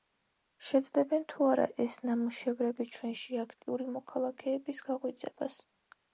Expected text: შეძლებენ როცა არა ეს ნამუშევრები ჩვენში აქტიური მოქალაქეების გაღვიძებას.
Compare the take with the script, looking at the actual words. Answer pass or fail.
fail